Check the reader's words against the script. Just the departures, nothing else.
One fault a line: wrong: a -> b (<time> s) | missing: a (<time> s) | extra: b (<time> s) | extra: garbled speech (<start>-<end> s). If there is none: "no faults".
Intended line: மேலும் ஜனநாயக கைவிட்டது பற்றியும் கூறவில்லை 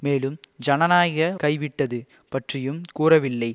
no faults